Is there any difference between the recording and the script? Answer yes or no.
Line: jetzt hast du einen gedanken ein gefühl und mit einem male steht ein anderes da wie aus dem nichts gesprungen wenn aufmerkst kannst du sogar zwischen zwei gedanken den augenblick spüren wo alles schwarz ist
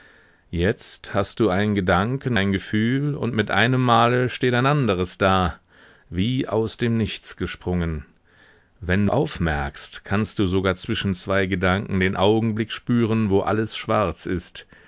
no